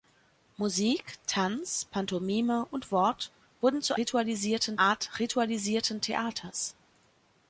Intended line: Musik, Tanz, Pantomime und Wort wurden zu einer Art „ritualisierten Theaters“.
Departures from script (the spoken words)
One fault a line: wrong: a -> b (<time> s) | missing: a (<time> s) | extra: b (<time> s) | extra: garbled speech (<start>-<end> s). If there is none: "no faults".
wrong: einer -> ritualisierten (4.0 s)